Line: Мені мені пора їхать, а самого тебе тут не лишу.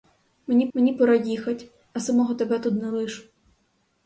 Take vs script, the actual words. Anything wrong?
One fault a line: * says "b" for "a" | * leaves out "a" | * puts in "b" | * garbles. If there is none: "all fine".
all fine